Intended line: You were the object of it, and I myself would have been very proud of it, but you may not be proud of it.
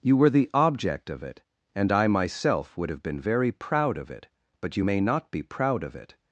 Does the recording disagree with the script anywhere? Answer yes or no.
no